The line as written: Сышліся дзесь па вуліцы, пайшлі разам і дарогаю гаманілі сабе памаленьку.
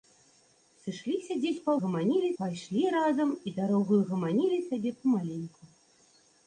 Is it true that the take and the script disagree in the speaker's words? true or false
true